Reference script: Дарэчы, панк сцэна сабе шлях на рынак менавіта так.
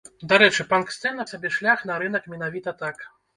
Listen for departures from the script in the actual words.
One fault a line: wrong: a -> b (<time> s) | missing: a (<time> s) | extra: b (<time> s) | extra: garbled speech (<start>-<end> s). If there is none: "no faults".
no faults